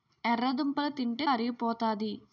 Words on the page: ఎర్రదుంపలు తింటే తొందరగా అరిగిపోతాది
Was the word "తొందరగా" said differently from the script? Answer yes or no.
yes